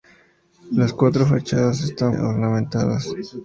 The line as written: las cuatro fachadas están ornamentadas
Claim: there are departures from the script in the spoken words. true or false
false